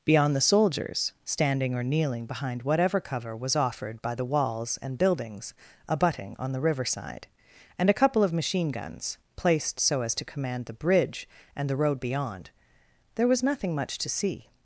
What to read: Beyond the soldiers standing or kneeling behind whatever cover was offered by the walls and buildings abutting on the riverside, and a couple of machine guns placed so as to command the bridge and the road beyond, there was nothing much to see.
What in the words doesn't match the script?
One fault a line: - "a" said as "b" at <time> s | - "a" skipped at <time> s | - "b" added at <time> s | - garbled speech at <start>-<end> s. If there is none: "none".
none